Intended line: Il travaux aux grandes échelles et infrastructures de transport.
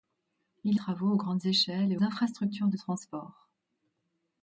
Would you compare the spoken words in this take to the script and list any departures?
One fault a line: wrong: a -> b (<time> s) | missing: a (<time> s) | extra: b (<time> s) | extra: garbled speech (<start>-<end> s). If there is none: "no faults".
no faults